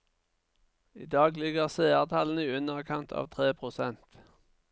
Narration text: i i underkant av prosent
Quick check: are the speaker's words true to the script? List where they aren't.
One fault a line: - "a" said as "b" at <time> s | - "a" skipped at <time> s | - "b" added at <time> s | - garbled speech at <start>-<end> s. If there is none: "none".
- "dag ligger seertallene" added at 1.1 s
- "tre" added at 3.4 s